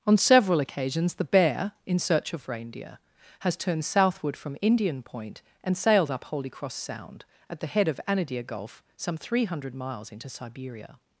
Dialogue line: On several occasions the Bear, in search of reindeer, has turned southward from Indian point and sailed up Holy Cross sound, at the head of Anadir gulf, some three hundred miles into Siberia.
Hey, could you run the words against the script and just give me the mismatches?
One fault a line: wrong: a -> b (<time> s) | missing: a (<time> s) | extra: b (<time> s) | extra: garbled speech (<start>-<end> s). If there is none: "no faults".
no faults